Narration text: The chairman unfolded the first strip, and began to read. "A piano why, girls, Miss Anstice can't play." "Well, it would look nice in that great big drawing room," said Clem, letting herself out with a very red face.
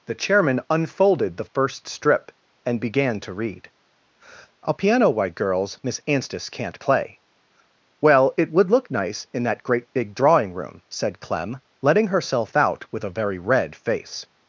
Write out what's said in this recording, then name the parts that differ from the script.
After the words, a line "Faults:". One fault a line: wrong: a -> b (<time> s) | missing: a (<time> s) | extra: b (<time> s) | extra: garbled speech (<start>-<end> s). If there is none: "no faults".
The chairman unfolded the first strip, and began to read. "A piano white, girls, Miss Anstice can't play." "Well, it would look nice in that great big drawing room," said Clem, letting herself out with a very red face.
Faults:
wrong: why -> white (5.1 s)